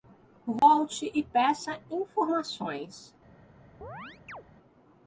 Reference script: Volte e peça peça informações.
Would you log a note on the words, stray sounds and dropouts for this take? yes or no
yes